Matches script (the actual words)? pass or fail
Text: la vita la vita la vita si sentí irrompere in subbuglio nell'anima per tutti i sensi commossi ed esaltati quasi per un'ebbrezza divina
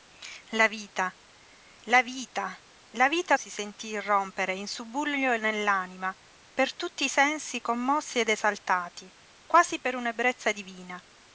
pass